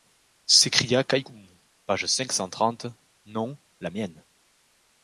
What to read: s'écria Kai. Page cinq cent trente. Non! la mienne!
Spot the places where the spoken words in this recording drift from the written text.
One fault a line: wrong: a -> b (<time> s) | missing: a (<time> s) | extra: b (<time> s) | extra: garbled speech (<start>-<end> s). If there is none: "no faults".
extra: Koumou (1.2 s)